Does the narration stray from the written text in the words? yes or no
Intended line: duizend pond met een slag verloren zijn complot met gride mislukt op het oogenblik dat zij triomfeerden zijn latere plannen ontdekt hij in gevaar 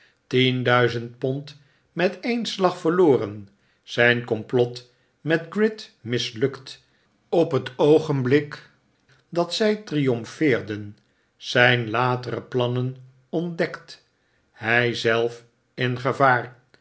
yes